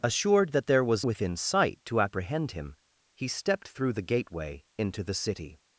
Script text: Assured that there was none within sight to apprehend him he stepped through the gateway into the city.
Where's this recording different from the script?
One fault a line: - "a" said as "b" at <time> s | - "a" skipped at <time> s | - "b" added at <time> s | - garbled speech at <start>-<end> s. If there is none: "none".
- "none" skipped at 1.1 s